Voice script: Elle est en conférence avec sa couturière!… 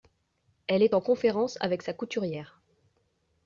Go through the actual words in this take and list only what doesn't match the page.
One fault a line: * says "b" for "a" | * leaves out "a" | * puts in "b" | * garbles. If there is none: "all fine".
all fine